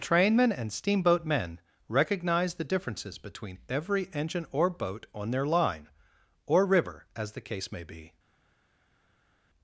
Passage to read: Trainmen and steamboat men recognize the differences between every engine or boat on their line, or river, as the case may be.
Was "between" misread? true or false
false